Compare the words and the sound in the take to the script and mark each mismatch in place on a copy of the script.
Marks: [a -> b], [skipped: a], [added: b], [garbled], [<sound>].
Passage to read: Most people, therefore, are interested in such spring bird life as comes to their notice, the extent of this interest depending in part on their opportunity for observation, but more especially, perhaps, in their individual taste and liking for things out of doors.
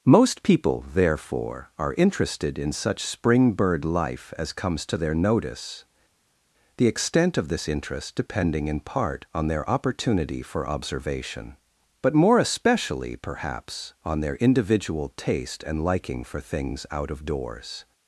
Most people, therefore, are interested in such spring bird life as comes to their notice, the extent of this interest depending in part on their opportunity for observation, but more especially, perhaps, [in -> on] their individual taste and liking for things out of doors.